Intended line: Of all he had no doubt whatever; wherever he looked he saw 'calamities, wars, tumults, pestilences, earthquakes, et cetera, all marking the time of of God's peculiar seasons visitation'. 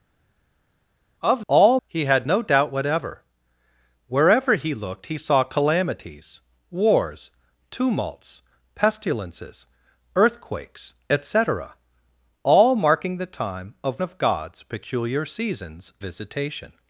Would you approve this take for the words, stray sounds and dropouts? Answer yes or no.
yes